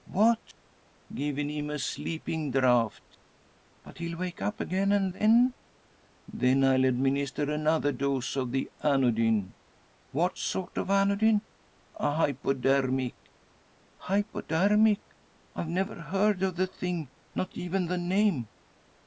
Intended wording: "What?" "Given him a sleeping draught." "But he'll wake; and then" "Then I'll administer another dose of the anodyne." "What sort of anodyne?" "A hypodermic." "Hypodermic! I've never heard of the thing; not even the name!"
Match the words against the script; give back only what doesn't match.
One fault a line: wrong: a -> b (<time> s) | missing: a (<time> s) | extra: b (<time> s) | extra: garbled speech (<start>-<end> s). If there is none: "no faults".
extra: up again (4.4 s)